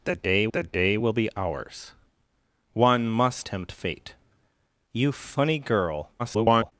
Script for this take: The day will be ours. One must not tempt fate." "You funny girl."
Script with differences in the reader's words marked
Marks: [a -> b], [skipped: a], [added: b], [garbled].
The day [added: the day] will be ours. One must [skipped: not] tempt fate." "You funny girl." [garbled]